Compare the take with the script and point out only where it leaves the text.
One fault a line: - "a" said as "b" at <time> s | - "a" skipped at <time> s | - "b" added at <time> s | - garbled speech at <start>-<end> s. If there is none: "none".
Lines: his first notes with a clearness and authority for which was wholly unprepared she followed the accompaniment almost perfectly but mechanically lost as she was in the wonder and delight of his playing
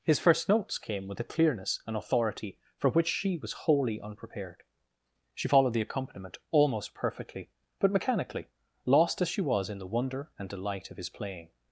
- "came" added at 0.8 s
- "she" added at 3.1 s